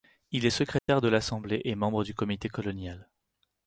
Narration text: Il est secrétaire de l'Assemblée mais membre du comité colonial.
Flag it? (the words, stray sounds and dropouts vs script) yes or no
yes